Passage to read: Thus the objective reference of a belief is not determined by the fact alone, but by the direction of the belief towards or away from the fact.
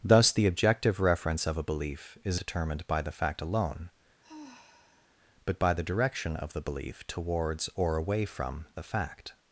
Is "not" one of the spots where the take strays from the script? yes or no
yes